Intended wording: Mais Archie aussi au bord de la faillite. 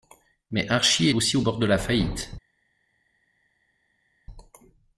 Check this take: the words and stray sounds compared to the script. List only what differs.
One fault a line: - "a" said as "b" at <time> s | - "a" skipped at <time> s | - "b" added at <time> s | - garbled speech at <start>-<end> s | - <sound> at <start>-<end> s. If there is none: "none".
none